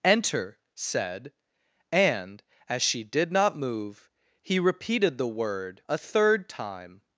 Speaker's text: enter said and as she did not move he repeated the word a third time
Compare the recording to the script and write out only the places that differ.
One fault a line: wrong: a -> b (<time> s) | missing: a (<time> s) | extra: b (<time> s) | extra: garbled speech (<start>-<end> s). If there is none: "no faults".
no faults